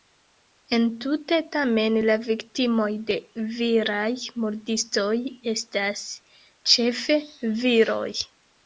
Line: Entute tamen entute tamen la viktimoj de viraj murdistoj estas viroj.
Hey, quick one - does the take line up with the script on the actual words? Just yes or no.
no